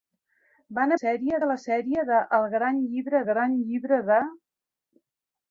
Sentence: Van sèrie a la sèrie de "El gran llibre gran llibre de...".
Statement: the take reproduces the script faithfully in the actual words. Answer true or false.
true